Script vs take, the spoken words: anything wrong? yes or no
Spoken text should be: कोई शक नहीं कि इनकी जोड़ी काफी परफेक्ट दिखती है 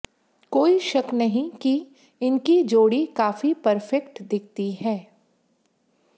no